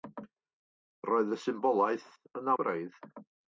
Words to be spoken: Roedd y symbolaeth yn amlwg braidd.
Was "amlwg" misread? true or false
true